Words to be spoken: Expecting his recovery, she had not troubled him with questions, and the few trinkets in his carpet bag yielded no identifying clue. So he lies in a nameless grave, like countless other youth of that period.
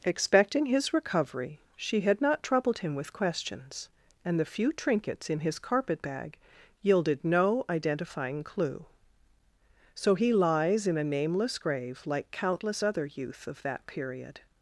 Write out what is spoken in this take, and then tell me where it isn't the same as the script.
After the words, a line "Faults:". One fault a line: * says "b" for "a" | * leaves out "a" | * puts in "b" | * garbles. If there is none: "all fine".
Expecting his recovery, she had not troubled him with questions, and the few trinkets in his carpet bag yielded no identifying clue. So he lies in a nameless grave, like countless other youth of that period.
Faults:
all fine